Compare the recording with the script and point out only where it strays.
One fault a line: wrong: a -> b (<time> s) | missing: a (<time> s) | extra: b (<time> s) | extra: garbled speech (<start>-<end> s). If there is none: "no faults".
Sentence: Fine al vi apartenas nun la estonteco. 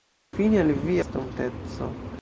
missing: apartenas nun la (0.9 s)